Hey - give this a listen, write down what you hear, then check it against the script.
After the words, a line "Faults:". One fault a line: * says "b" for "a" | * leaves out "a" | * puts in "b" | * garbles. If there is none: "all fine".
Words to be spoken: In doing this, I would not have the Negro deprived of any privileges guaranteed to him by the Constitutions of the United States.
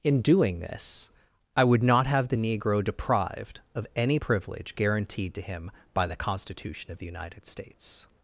In doing this, I would not have the Negro deprived of any privilege guaranteed to him by the Constitution of the United States.
Faults:
* says "privilege" for "privileges"
* says "Constitution" for "Constitutions"